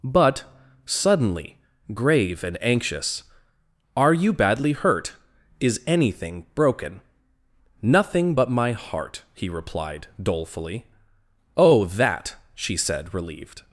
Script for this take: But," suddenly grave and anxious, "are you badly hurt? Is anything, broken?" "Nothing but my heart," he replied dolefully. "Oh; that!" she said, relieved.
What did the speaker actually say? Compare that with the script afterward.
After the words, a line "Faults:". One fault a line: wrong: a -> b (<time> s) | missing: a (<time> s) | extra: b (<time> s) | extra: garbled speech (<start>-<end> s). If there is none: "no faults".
But," suddenly grave and anxious, "are you badly hurt? Is anything, broken?" "Nothing but my heart," he replied dolefully. "Oh; that!" she said, relieved.
Faults:
no faults